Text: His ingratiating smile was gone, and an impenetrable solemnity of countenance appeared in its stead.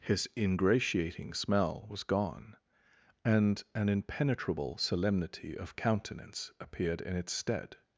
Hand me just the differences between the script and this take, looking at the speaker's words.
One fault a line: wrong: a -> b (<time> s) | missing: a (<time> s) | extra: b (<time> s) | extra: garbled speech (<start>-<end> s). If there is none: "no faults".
wrong: smile -> smell (1.4 s)